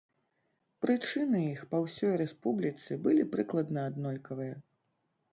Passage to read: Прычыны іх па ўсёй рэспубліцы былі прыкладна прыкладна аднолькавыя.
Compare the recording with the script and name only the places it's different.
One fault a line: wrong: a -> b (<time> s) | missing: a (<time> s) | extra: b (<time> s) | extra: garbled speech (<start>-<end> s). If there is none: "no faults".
missing: прыкладна (3.8 s)